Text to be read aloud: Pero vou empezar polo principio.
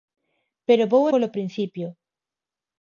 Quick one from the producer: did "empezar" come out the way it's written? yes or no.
no